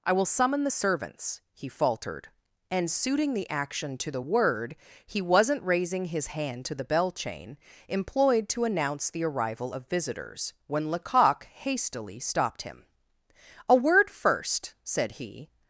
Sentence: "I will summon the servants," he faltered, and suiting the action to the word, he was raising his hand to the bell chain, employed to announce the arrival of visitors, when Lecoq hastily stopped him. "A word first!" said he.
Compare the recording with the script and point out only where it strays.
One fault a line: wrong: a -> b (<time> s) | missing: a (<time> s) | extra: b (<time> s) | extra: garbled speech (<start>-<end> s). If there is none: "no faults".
wrong: was -> wasn't (5.2 s)